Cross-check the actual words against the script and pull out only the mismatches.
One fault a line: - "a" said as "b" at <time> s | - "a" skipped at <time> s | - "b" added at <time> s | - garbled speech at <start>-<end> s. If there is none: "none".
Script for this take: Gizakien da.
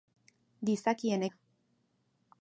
none